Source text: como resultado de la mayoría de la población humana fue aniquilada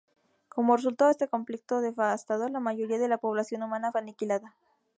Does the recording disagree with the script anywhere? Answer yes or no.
yes